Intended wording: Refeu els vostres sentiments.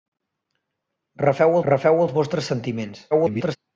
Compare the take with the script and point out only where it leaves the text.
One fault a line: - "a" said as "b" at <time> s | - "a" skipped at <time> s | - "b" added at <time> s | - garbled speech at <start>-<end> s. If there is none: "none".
- "refeu" added at 1.7 s
- garbled speech at 3.1-3.6 s